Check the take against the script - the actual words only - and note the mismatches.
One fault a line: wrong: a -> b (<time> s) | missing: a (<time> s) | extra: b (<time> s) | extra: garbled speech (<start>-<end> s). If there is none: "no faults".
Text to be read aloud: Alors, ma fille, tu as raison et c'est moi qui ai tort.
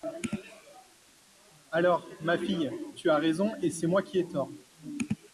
no faults